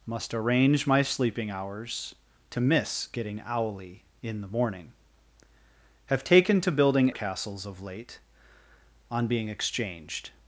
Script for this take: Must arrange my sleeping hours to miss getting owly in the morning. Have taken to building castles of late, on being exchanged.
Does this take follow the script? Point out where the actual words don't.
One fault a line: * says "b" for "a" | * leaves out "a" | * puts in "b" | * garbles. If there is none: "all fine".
all fine